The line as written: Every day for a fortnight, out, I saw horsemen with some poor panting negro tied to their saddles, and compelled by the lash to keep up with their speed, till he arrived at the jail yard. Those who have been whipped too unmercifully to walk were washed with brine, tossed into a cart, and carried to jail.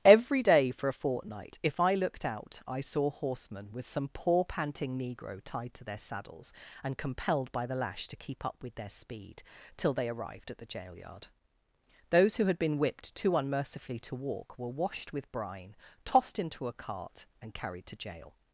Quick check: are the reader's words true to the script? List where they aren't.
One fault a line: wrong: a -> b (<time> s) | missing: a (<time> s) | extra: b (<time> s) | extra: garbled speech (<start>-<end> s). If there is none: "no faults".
extra: if I looked (1.6 s)
wrong: he -> they (9.9 s)
wrong: have -> had (12.5 s)